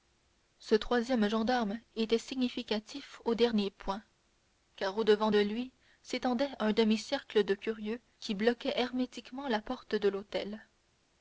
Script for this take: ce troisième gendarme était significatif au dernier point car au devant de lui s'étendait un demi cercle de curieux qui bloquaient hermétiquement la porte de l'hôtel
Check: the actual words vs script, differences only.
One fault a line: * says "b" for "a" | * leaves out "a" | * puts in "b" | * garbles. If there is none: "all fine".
all fine